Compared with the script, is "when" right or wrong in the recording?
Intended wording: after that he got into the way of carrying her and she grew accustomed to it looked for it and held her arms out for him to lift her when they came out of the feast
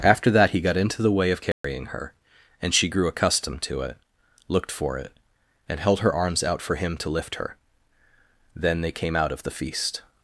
wrong